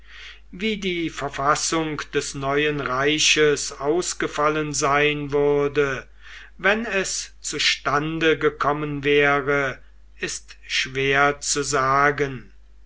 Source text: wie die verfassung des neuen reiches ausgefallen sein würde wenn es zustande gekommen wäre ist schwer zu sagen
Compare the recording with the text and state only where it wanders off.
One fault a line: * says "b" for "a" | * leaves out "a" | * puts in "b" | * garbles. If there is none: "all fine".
all fine